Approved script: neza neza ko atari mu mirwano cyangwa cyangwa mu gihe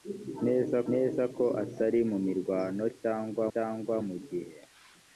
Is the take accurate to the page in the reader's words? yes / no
yes